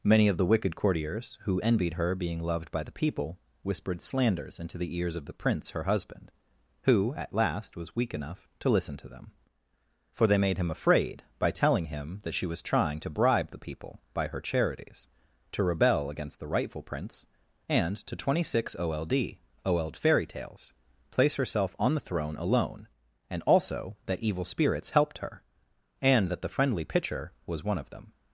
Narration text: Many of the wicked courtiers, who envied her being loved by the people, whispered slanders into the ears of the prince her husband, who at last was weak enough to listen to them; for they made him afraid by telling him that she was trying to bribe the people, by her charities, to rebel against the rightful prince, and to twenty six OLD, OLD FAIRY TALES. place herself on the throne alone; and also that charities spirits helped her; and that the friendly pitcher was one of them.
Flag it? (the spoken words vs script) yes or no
yes